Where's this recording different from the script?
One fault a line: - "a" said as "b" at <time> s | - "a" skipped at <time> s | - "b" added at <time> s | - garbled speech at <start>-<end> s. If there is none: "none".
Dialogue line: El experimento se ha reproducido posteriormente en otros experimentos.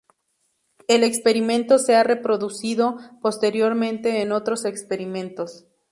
none